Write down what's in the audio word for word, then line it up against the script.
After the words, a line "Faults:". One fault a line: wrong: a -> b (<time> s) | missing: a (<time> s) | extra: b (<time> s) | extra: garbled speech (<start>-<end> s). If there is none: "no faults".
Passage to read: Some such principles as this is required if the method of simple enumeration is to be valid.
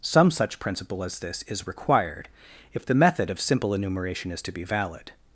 Some such principle as this is required if the method of simple enumeration is to be valid.
Faults:
wrong: principles -> principle (0.6 s)